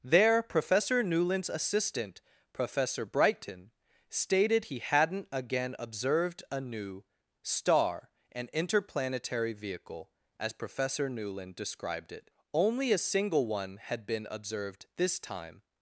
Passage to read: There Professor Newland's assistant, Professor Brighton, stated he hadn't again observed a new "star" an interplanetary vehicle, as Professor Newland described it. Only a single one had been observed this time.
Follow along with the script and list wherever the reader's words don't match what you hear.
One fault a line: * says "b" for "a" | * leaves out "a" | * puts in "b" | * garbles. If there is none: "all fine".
all fine